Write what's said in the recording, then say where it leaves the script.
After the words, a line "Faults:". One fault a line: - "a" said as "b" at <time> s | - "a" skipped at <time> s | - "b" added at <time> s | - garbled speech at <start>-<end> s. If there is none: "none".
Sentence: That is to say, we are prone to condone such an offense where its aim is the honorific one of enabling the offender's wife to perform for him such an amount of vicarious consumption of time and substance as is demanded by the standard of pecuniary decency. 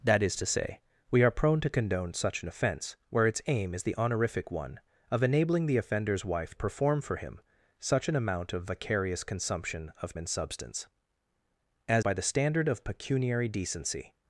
That is to say, we are prone to condone such an offense where its aim is the honorific one of enabling the offender's wife perform for him such an amount of vicarious consumption of and substance as by the standard of pecuniary decency.
Faults:
- "to" skipped at 6.5 s
- "time" skipped at 10.2 s
- "is demanded" skipped at 12.1 s